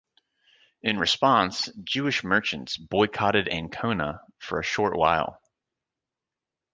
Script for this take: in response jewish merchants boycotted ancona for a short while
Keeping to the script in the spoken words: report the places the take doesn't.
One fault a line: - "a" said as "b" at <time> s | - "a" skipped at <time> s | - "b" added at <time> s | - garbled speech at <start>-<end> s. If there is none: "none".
none